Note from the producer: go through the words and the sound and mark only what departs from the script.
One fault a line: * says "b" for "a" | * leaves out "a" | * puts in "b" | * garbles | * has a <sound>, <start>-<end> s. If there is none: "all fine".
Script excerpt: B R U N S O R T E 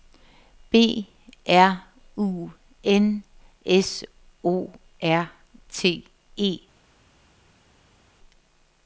all fine